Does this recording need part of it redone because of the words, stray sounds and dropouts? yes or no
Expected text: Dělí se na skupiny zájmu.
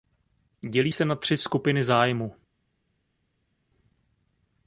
yes